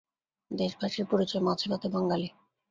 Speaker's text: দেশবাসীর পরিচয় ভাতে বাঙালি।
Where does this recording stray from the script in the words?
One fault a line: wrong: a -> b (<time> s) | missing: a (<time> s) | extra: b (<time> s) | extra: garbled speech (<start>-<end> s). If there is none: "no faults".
extra: মাছে (1.5 s)